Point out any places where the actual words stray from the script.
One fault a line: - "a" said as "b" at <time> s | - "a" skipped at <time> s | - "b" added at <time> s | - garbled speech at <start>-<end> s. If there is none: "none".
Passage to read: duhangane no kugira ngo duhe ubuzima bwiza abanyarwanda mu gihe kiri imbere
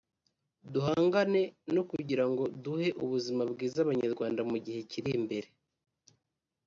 none